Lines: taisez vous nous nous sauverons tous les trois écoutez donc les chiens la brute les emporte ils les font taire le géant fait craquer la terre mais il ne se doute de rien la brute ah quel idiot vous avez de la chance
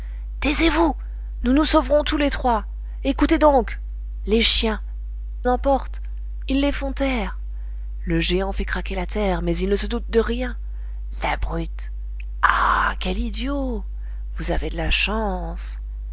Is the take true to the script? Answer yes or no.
no